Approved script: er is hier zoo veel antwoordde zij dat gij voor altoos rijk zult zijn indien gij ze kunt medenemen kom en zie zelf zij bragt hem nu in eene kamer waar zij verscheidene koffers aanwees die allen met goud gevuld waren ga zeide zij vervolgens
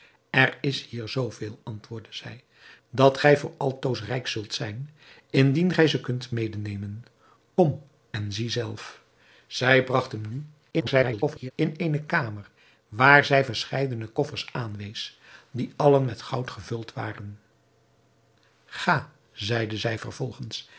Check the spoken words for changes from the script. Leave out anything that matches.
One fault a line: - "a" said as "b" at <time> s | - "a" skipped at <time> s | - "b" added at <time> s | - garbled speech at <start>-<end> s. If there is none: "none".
- garbled speech at 10.7-11.5 s